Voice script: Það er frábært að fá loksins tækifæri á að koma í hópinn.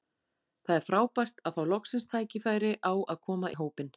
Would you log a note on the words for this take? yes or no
no